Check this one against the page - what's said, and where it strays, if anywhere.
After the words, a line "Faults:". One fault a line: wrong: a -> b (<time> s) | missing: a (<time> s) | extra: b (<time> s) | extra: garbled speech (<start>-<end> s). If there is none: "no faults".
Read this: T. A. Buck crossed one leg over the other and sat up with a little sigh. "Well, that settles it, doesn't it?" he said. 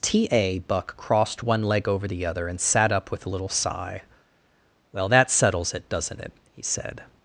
T. A. Buck crossed one leg over the other and sat up with a little sigh. "Well, that settles it, doesn't it?" he said.
Faults:
no faults